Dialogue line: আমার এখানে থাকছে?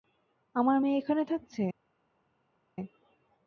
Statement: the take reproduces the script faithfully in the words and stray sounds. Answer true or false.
false